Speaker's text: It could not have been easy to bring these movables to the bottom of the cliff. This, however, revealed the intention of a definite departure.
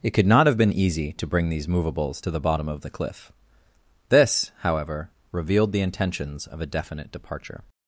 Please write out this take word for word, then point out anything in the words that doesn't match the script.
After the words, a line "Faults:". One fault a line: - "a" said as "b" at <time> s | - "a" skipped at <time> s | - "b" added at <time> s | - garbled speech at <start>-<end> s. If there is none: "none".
It could not have been easy to bring these movables to the bottom of the cliff. This, however, revealed the intentions of a definite departure.
Faults:
- "intention" said as "intentions" at 5.8 s